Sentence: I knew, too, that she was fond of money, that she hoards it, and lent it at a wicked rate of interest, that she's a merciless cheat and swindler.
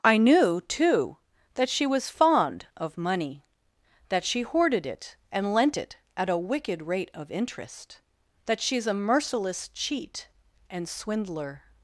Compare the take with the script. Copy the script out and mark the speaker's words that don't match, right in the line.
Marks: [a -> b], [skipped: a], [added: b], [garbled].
I knew, too, that she was fond of money, that she [hoards -> hoarded] it, and lent it at a wicked rate of interest, that she's a merciless cheat and swindler.